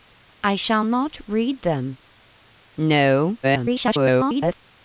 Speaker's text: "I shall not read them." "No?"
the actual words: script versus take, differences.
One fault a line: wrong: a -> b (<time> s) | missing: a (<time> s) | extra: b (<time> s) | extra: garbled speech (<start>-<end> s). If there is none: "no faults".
extra: garbled speech (3.4-4.5 s)